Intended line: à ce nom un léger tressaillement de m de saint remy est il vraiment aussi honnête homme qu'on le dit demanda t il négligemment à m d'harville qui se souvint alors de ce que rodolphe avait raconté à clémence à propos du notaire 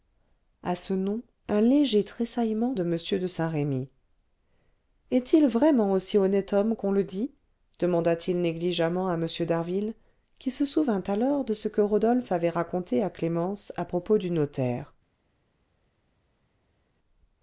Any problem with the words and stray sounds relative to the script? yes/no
no